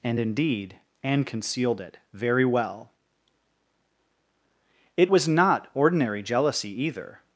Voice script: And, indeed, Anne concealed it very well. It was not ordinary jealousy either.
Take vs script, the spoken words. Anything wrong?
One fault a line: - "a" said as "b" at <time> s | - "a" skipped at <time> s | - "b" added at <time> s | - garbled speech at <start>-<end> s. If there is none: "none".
none